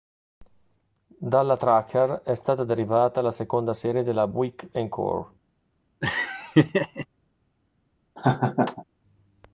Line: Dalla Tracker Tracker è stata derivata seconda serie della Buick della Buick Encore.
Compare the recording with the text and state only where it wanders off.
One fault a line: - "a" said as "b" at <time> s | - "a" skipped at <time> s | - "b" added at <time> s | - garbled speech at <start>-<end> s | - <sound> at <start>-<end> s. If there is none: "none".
- "Tracker" skipped at 2.2 s
- "la" added at 3.2 s
- "della Buick" skipped at 4.7 s
- laugh at 6.0-7.1 s
- laugh at 8.2-8.8 s